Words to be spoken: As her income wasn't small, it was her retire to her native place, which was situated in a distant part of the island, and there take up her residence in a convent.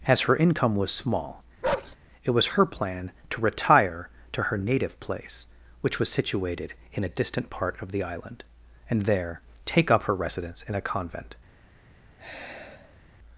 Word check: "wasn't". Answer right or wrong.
wrong